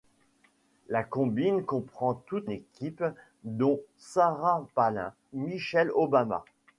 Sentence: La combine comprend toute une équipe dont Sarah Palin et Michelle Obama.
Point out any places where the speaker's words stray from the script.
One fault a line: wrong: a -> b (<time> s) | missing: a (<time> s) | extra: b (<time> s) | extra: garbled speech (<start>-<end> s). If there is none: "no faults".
missing: une (2.5 s)
missing: et (5.1 s)